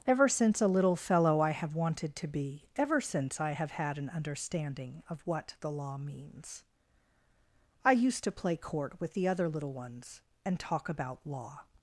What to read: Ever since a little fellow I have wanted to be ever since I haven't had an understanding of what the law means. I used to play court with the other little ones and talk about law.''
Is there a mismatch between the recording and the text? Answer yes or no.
yes